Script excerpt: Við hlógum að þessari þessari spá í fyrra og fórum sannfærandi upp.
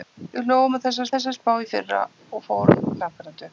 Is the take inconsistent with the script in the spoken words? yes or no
no